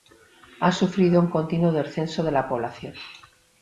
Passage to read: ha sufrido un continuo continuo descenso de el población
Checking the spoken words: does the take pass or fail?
fail